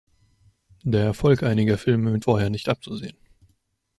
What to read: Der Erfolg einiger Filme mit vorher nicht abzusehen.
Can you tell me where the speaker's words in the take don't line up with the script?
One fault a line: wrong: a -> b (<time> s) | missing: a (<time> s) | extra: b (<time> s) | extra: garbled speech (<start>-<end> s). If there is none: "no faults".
no faults